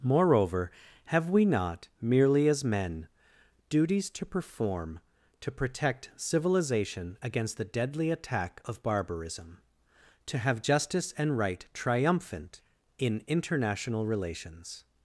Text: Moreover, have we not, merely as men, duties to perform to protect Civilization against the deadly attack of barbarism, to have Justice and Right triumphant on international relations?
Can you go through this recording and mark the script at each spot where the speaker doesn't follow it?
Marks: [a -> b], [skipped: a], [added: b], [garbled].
Moreover, have we not, merely as men, duties to perform to protect Civilization against the deadly attack of barbarism, to have Justice and Right triumphant [on -> in] international relations?